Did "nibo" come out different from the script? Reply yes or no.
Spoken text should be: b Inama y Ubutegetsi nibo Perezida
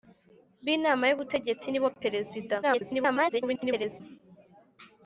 no